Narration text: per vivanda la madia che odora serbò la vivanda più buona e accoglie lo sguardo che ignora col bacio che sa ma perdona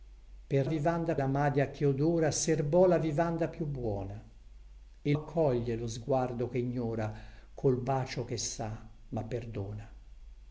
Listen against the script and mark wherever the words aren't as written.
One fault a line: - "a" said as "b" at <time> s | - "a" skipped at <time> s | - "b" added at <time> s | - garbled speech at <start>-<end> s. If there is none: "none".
none